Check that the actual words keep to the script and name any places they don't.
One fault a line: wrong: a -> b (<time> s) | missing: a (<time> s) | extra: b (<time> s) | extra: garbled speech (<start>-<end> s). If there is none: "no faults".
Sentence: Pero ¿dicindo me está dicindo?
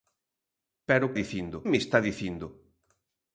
no faults